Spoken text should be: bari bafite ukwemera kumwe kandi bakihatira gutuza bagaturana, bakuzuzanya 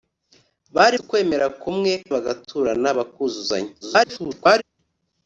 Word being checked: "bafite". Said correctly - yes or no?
no